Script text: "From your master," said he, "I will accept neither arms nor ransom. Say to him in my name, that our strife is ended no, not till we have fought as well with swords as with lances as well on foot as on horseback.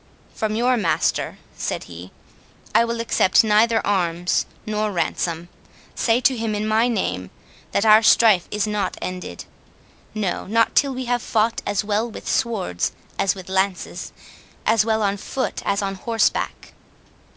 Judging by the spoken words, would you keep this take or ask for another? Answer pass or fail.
fail